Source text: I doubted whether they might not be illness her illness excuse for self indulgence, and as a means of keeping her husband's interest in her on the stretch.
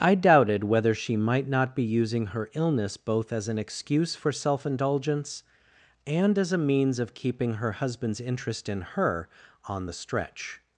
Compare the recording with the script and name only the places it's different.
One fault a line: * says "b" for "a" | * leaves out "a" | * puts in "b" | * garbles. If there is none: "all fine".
* says "she" for "they"
* says "using" for "illness"
* puts in "both as an"